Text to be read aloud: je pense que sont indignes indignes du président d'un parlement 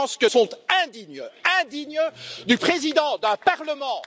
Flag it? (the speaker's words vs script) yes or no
no